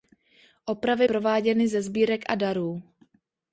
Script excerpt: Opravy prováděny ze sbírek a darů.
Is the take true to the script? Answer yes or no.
yes